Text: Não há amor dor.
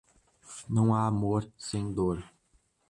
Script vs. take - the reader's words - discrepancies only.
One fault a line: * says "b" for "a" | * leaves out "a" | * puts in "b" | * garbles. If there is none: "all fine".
* puts in "sem"